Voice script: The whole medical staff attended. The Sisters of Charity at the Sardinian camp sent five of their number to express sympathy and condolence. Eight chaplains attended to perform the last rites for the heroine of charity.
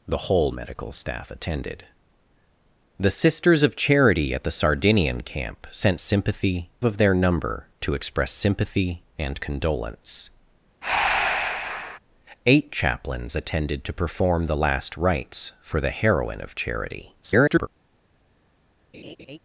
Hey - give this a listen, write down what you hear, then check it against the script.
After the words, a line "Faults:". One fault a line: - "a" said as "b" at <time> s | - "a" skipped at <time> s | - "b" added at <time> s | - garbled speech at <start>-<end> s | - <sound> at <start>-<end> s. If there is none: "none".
The whole medical staff attended. The Sisters of Charity at the Sardinian camp sent sympathy of their number to express sympathy and condolence. Eight chaplains attended to perform the last rites for the heroine of charity. [garbled]
Faults:
- "five" said as "sympathy" at 6.0 s
- breath at 10.8-12.0 s
- garbled speech at 17.2-17.7 s
- laugh at 18.9-19.4 s